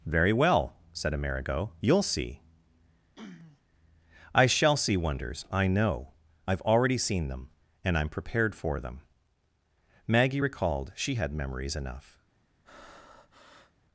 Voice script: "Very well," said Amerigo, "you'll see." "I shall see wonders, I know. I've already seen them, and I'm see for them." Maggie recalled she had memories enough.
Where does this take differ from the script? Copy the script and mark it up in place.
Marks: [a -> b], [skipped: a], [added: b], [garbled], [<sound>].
"Very well," said Amerigo, "you'll see." [throat clearing] "I shall see wonders, I know. I've already seen them, and I'm [see -> prepared] for them." Maggie recalled she had memories enough. [breath]